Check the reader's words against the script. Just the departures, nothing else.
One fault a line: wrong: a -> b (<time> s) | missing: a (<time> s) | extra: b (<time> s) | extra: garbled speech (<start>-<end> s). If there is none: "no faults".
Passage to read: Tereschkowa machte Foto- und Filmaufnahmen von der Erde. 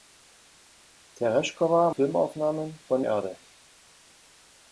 missing: machte Foto und (1.9 s)
missing: der (3.0 s)